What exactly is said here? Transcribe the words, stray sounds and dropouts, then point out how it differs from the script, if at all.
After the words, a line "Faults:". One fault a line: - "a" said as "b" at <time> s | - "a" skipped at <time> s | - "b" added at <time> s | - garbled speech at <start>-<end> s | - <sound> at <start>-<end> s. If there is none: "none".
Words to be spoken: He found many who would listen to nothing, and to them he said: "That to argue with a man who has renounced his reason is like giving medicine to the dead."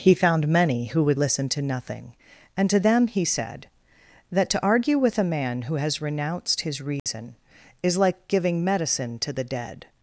He found many who would listen to nothing, and to them he said: "That to argue with a man who has renounced his reason is like giving medicine to the dead."
Faults:
- dropout at 7.0-7.1 s